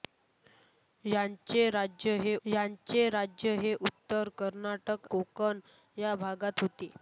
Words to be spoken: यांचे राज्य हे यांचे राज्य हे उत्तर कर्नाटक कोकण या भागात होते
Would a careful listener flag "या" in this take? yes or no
no